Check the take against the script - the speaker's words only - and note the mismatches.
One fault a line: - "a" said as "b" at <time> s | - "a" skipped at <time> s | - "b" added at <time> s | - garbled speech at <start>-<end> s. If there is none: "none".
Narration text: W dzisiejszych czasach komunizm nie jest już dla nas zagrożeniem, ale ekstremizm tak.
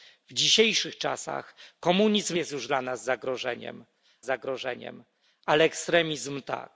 - "nie" skipped at 2.4 s
- "zagrożeniem" added at 4.2 s